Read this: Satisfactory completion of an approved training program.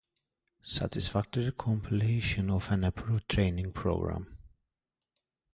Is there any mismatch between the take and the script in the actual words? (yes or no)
no